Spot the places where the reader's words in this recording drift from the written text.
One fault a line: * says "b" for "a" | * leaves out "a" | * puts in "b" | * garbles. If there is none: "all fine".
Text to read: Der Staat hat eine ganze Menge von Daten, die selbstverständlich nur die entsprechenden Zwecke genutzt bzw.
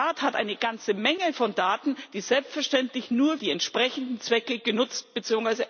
all fine